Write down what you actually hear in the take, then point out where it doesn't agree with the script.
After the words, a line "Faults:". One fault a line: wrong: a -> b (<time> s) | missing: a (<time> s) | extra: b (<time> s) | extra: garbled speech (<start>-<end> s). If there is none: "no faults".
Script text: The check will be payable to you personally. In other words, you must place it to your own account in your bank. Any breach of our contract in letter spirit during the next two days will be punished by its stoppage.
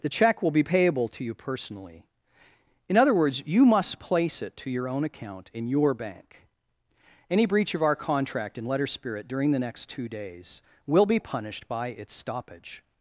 The check will be payable to you personally. In other words, you must place it to your own account in your bank. Any breach of our contract in letter spirit during the next two days will be punished by its stoppage.
Faults:
no faults